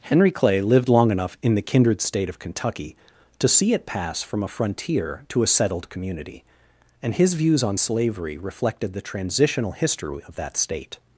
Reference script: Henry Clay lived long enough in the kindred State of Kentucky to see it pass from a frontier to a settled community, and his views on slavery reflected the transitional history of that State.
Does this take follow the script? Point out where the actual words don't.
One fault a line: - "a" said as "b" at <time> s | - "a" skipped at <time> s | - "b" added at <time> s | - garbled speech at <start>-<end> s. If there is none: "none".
none